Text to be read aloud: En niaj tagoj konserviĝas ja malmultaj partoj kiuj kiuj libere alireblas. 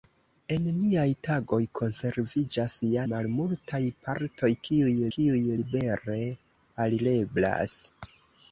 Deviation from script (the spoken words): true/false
false